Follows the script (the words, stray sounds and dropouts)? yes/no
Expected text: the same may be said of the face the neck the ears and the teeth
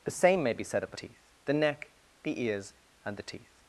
no